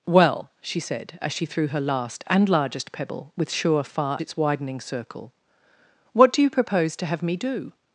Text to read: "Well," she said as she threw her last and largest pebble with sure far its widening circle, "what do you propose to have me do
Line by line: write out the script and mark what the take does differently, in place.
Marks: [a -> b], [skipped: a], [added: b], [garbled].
"Well," she said as she threw her last and largest pebble with sure far its widening circle, "what do you propose to have me do